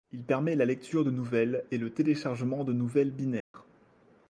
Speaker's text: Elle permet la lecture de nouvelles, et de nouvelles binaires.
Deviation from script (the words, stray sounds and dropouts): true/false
true